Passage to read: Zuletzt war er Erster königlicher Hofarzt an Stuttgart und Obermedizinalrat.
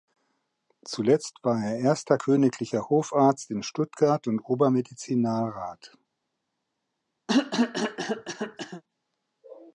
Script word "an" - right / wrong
wrong